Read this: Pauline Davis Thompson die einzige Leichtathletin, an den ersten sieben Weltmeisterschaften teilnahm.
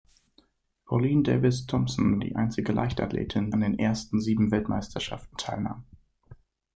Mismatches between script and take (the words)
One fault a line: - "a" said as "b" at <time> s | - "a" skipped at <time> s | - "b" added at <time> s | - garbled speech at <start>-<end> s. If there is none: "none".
none